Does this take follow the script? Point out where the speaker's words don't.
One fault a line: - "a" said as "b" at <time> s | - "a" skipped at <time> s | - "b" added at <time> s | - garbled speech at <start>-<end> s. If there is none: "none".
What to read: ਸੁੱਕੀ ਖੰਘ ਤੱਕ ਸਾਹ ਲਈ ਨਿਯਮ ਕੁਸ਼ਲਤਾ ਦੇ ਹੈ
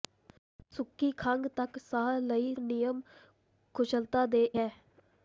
none